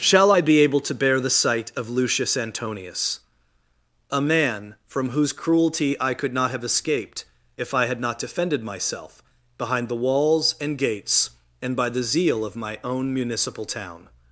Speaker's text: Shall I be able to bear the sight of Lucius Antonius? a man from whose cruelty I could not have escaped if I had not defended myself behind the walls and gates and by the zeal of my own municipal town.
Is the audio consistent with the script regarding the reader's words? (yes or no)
yes